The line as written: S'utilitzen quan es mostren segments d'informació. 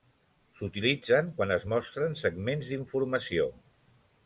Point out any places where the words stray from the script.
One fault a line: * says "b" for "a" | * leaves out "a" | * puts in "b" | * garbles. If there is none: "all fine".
all fine